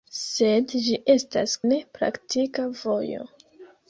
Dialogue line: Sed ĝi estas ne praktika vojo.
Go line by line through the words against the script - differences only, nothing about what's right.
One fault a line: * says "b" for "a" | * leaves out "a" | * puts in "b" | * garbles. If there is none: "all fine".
all fine